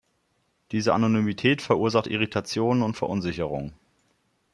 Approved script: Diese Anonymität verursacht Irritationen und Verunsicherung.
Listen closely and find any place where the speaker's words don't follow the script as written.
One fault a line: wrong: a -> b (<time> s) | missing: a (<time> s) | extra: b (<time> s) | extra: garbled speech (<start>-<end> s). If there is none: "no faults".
no faults